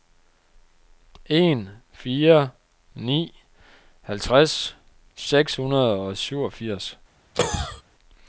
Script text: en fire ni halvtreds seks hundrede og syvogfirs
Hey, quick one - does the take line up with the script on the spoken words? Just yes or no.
yes